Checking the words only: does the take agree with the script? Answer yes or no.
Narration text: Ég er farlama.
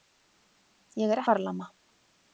yes